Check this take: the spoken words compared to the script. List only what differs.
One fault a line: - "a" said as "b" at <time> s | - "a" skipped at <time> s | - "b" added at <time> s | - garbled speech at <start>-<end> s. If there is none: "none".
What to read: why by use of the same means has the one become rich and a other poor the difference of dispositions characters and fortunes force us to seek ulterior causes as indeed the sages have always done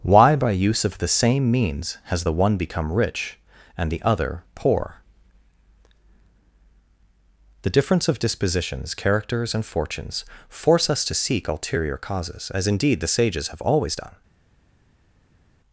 - "a" said as "the" at 3.9 s